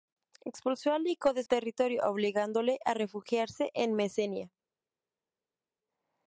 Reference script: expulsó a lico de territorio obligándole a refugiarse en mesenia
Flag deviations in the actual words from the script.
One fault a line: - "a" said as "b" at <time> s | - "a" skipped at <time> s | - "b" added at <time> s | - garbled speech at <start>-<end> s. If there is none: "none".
none